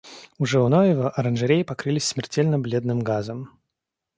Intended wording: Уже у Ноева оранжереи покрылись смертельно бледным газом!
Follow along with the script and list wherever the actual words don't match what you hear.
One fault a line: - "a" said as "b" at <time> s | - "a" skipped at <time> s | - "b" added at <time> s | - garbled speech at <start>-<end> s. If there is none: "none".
none